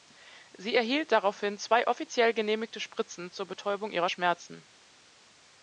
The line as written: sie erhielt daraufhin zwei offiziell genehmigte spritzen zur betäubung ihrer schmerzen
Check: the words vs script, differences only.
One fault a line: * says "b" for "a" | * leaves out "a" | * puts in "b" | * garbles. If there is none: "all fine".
all fine